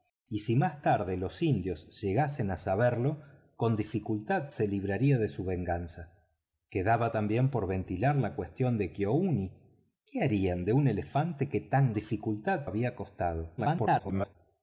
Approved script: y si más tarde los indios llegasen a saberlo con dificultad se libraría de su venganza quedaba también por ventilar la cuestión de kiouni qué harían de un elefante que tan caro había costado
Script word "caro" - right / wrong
wrong